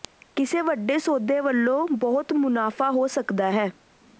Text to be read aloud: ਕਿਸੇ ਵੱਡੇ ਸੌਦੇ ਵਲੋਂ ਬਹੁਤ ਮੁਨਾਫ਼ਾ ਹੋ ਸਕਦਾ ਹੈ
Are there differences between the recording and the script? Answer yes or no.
no